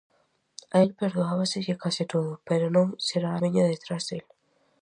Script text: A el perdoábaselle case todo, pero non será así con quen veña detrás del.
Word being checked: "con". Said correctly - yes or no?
no